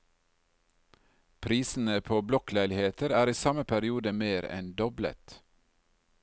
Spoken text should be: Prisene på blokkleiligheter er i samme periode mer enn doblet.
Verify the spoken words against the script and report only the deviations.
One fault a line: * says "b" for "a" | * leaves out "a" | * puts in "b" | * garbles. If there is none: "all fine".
all fine